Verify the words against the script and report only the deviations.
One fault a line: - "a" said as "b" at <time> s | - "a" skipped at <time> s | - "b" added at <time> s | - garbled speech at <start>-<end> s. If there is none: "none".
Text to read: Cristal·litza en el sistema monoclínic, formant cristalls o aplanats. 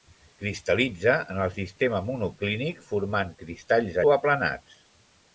none